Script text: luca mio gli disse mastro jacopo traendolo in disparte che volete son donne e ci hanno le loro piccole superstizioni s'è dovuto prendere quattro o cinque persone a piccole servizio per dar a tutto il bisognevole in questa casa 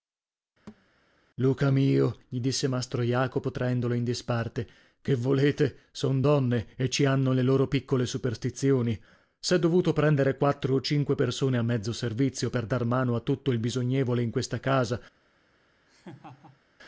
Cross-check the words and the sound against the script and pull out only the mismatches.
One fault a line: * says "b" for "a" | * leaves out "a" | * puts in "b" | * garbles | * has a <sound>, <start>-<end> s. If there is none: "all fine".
* has a thud, 0.7-0.9 s
* says "mezzo" for "piccole"
* puts in "mano"
* has a laugh, 15.9-16.6 s